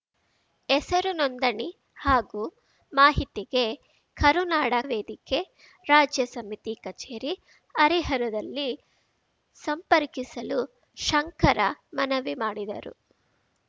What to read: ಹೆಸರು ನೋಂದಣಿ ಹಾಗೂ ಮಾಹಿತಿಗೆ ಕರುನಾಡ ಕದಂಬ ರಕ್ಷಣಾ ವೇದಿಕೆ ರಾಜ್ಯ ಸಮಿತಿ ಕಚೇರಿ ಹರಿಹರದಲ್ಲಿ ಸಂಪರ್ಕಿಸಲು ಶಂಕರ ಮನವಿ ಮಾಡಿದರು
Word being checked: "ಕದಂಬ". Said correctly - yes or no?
no